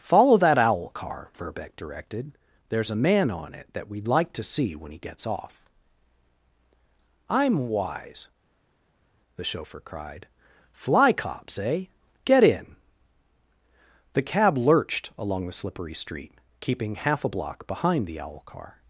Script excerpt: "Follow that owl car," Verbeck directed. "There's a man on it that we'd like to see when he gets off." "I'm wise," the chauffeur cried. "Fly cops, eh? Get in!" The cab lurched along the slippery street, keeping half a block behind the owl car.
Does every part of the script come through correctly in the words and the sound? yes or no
yes